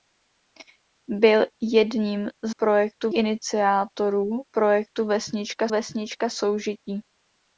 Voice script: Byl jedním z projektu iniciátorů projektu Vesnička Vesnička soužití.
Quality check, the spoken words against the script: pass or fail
pass